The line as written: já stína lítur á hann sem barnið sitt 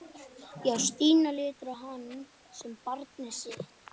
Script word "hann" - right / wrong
right